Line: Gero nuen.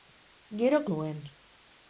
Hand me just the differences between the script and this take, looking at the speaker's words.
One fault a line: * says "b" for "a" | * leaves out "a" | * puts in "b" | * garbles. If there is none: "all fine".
all fine